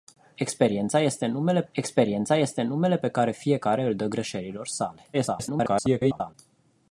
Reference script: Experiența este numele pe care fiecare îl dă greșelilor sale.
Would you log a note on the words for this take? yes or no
yes